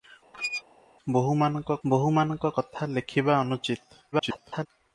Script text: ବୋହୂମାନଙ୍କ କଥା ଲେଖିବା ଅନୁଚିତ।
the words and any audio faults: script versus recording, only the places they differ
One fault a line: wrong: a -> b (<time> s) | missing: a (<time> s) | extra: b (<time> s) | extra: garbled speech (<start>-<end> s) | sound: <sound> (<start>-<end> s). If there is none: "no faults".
sound: squeak (0.3-0.6 s)
extra: ବୋହୂମାନଙ୍କ (1.8 s)
extra: garbled speech (4.1-4.7 s)